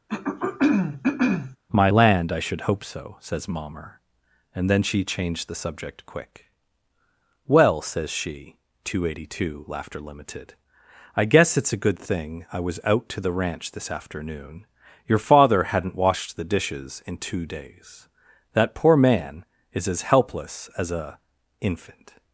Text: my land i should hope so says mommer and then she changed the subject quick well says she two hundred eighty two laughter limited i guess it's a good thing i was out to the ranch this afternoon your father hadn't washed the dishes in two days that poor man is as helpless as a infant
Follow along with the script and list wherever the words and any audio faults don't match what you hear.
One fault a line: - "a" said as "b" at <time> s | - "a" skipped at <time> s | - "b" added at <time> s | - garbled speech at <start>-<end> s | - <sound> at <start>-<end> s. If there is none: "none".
- throat clearing at 0.1-1.6 s